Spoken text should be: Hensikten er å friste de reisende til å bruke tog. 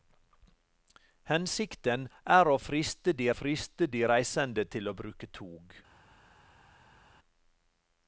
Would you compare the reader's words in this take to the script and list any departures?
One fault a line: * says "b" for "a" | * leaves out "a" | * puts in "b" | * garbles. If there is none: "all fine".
* puts in "friste de"